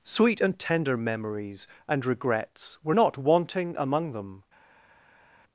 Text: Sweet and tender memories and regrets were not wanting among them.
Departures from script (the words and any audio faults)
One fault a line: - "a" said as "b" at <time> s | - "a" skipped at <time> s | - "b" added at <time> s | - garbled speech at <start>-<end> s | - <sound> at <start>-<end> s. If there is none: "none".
none